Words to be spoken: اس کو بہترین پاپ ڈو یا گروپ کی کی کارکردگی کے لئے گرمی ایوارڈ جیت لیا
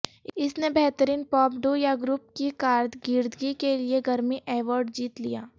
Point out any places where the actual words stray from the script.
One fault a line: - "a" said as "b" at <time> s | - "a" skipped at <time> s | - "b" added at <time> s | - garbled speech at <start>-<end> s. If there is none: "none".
- "کو" said as "نے" at 0.6 s
- "کی" skipped at 2.5 s